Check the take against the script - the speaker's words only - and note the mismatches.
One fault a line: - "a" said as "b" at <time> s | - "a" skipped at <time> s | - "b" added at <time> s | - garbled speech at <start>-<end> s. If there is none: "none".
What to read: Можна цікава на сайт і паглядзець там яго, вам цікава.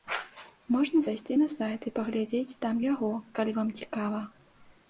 - "цікава" said as "зайсці" at 1.1 s
- "калі" added at 3.4 s